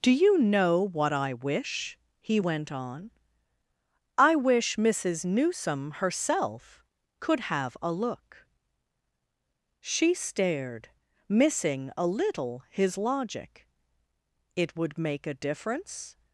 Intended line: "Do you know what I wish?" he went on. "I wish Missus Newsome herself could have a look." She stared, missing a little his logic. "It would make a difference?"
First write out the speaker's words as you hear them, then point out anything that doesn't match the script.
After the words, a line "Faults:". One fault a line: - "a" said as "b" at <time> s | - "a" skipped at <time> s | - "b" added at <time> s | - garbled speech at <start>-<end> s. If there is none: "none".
"Do you know what I wish?" he went on. "I wish Missus Newsome herself could have a look." She stared, missing a little his logic. "It would make a difference?"
Faults:
none